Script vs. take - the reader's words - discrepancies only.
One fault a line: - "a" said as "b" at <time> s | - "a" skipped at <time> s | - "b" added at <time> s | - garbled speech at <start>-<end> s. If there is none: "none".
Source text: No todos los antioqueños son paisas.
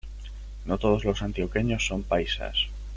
none